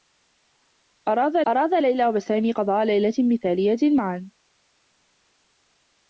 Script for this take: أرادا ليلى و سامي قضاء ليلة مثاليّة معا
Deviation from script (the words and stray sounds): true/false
true